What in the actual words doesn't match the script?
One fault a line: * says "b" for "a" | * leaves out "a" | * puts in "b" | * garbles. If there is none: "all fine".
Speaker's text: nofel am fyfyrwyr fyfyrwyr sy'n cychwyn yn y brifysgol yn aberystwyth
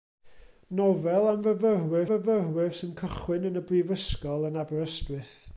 all fine